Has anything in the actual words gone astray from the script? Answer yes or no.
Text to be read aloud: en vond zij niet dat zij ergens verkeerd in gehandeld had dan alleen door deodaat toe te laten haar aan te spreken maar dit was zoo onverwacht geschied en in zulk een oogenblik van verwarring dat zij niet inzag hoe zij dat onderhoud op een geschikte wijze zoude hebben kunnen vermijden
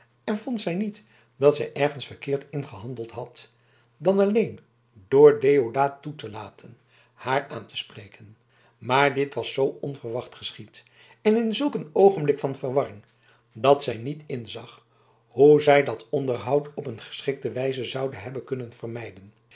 no